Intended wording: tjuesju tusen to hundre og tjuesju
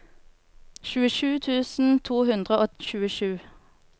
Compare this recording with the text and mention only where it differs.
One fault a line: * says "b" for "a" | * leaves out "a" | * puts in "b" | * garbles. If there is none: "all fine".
all fine